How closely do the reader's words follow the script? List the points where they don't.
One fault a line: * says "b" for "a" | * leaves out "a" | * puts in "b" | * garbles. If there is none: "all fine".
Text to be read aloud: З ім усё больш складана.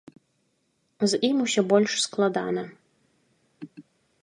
all fine